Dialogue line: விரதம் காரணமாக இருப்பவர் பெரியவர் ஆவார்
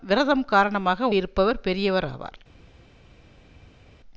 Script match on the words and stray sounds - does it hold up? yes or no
yes